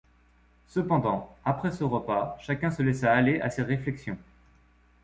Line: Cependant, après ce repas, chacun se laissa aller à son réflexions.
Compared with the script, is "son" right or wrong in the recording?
wrong